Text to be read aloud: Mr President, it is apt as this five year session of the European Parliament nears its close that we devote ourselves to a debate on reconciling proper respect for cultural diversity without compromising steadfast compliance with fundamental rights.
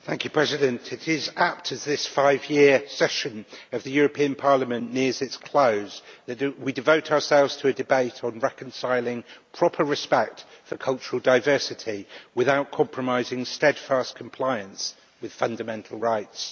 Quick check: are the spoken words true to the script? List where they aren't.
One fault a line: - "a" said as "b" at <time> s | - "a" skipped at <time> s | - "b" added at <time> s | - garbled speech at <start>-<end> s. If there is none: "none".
none